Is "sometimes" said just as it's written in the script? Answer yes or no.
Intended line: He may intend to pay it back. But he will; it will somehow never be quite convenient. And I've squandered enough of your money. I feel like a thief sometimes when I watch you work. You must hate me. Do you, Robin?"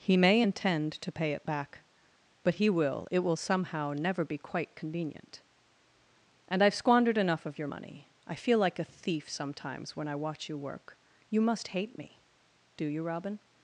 yes